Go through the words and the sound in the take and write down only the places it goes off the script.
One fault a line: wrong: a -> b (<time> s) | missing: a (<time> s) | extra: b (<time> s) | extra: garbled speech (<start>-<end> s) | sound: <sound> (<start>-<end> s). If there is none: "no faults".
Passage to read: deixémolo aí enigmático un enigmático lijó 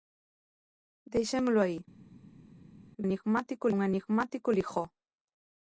no faults